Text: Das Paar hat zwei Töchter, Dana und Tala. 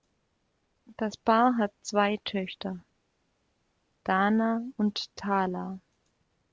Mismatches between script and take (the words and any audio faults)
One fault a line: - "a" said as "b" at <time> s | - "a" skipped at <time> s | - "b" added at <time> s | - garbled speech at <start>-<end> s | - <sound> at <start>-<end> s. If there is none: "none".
none